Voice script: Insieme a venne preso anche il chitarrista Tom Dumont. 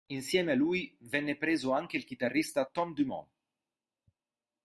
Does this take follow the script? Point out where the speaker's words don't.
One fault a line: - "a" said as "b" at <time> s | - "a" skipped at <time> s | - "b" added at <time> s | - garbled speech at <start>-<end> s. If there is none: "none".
- "lui" added at 0.6 s